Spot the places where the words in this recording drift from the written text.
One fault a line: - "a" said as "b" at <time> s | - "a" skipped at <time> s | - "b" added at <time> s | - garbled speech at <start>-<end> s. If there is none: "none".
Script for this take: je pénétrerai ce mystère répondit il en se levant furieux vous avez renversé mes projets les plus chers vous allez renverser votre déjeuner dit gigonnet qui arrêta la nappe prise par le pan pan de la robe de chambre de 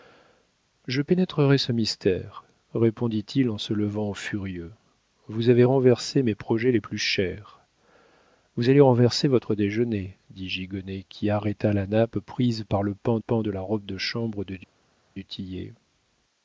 none